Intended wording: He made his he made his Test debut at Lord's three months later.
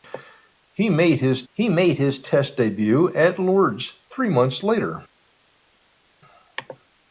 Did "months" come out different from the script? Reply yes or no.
no